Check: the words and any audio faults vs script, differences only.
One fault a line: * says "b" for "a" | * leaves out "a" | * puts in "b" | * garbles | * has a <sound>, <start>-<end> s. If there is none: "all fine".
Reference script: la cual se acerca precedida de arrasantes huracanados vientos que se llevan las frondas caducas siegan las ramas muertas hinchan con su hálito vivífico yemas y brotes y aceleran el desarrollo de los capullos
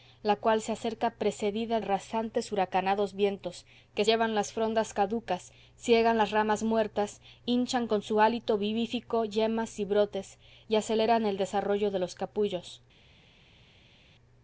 * leaves out "de"
* leaves out "se"